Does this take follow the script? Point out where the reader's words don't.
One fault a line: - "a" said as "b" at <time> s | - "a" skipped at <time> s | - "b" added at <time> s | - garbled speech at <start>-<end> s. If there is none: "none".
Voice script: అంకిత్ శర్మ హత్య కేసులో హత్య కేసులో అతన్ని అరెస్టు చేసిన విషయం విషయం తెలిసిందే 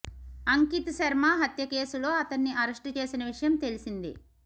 - "హత్య కేసులో" skipped at 2.1 s
- "విషయం" skipped at 3.6 s